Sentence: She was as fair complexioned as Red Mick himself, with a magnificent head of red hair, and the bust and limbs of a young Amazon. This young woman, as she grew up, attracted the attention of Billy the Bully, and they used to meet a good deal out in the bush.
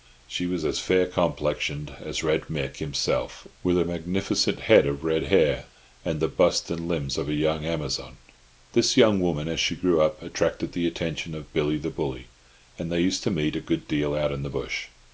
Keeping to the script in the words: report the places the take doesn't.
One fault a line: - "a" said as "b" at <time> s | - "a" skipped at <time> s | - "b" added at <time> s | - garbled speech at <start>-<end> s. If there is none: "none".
none